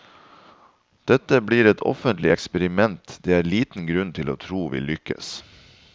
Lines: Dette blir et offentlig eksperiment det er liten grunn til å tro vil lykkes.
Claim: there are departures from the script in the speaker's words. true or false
false